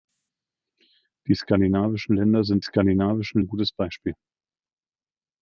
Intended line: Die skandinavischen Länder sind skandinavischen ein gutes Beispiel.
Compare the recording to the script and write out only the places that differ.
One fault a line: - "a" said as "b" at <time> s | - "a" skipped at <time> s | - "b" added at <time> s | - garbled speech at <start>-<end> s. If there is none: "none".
none